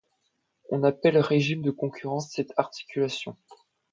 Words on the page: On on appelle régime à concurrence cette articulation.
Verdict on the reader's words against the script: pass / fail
fail